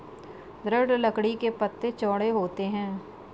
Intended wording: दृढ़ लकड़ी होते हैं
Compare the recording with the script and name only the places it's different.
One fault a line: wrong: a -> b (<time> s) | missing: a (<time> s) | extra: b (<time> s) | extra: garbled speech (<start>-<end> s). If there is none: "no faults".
extra: के पत्ते चौड़े (1.4 s)